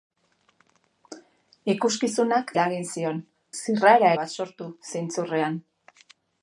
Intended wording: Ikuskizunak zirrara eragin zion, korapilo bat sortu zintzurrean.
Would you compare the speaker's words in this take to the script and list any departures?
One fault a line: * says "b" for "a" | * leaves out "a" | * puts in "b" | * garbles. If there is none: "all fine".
* leaves out "zirrara"
* says "zirrara" for "korapilo"